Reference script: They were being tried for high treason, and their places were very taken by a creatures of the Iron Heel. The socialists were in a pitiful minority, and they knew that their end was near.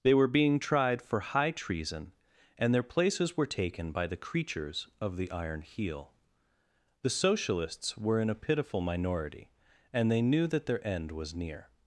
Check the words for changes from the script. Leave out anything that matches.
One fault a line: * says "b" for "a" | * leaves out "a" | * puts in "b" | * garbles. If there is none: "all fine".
* leaves out "very"
* says "the" for "a"